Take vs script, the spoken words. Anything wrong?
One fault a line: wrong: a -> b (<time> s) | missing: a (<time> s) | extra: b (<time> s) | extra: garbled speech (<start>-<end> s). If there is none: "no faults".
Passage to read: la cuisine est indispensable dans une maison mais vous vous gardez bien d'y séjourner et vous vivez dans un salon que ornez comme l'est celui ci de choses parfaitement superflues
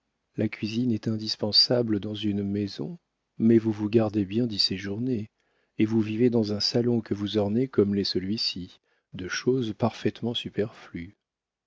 extra: vous (7.1 s)